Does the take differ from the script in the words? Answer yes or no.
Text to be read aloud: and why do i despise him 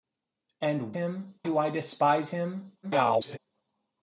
yes